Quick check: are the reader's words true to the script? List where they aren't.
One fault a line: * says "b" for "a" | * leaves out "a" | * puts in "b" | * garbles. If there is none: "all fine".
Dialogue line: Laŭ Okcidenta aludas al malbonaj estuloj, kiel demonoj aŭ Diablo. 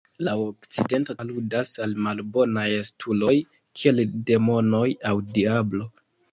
all fine